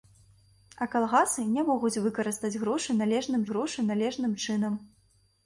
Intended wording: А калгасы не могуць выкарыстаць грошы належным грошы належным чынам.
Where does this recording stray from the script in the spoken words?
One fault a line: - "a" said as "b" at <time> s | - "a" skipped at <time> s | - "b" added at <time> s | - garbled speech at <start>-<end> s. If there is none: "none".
none